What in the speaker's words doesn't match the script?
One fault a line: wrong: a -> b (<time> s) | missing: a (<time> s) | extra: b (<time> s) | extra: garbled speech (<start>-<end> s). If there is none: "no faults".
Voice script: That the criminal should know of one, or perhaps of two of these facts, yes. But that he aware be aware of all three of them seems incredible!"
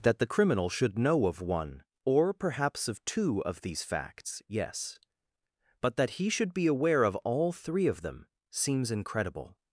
wrong: aware -> should (6.3 s)